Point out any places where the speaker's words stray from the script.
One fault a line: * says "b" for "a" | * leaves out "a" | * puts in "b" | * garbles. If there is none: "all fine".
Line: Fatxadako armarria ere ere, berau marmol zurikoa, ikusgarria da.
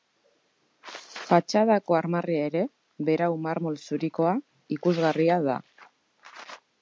* leaves out "ere"